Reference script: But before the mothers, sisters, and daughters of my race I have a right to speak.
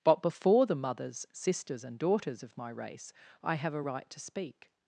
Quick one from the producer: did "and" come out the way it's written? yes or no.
yes